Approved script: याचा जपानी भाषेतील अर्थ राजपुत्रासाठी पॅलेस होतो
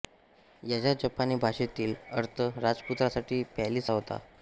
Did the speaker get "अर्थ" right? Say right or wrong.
right